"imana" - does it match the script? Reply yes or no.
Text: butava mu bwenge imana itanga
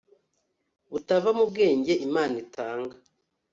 yes